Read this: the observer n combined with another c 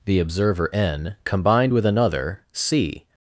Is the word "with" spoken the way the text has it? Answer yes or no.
yes